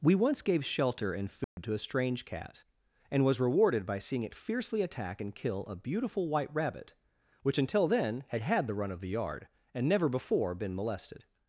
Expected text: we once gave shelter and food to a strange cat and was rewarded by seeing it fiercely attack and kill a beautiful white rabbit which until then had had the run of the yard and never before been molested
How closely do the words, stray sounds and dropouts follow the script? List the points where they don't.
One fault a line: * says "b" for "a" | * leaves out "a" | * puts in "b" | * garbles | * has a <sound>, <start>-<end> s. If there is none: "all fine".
* has a dropout, 1.4-1.6 s